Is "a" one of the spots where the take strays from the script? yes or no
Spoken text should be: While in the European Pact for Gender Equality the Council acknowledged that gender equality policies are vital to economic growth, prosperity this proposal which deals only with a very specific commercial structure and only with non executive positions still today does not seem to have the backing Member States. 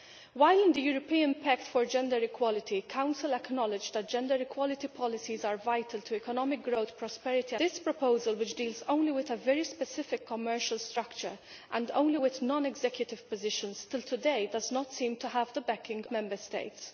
no